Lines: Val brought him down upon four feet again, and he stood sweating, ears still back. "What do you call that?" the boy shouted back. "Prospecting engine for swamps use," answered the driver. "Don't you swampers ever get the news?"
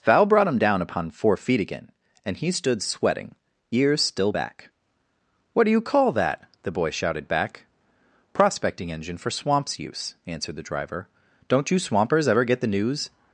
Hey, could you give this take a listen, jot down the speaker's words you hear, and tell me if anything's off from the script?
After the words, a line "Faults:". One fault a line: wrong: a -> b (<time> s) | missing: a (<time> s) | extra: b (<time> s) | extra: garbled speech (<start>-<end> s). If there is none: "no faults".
Val brought him down upon four feet again, and he stood sweating, ears still back. "What do you call that?" the boy shouted back. "Prospecting engine for swamps use," answered the driver. "Don't you swampers ever get the news?"
Faults:
no faults